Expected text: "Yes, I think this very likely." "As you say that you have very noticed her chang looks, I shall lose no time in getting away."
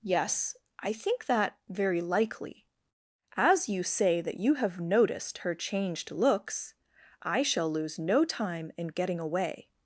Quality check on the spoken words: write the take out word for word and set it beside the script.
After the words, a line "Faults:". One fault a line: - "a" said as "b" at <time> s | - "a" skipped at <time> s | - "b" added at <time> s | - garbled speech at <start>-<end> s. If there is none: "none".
"Yes, I think that very likely." "As you say that you have noticed her changed looks, I shall lose no time in getting away."
Faults:
- "this" said as "that" at 1.2 s
- "very" skipped at 4.8 s
- "chang" said as "changed" at 5.5 s